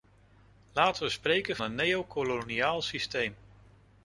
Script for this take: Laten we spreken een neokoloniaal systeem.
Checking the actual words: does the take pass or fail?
pass